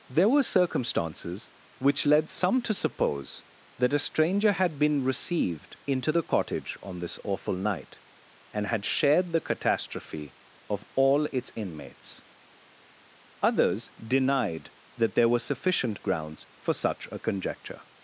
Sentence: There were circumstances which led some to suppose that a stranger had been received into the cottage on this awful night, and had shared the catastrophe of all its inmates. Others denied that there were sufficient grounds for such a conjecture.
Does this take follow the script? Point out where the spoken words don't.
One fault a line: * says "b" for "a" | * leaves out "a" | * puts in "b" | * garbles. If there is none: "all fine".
all fine